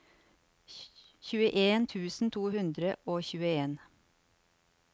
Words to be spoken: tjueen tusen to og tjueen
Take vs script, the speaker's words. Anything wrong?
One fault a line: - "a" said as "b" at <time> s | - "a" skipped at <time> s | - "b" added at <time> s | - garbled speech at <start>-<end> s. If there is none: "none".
- "hundre" added at 2.5 s